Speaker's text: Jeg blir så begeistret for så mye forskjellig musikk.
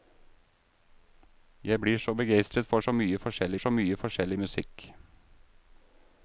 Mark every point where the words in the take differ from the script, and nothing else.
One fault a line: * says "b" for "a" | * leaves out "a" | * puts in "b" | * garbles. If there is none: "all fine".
* puts in "så mye forskjellig"